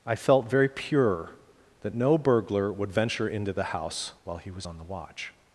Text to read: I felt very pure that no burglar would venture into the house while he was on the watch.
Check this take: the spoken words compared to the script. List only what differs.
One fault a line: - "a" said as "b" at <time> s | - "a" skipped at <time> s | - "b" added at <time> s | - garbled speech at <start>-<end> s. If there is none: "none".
none